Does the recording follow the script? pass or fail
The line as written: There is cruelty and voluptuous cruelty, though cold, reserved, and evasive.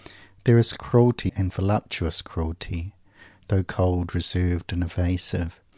pass